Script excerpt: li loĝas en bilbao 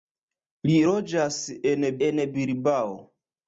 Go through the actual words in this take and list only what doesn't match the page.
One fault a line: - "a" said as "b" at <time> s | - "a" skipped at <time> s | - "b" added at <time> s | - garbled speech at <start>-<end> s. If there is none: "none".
- "en" added at 2.1 s